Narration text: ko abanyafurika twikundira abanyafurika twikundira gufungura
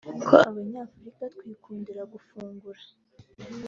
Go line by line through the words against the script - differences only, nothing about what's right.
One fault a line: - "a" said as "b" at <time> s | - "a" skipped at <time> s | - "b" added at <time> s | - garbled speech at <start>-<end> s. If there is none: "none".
- "abanyafurika twikundira" skipped at 2.0 s